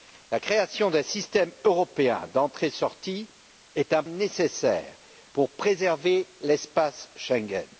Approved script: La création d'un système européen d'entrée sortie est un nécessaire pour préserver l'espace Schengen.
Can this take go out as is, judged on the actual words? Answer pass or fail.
pass